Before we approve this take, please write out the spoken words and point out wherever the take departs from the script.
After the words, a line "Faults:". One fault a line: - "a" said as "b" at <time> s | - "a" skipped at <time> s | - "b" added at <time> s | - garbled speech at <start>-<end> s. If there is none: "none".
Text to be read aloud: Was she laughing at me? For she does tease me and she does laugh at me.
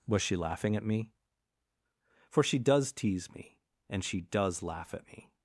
Was she laughing at me? For she does tease me and she does laugh at me.
Faults:
none